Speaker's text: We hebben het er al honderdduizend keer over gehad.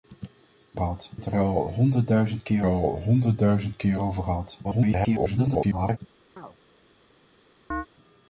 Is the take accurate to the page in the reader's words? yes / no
no